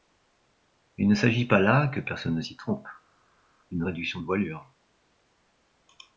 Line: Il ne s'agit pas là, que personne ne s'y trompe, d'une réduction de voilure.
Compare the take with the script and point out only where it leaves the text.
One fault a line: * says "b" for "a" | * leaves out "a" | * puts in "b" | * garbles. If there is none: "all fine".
all fine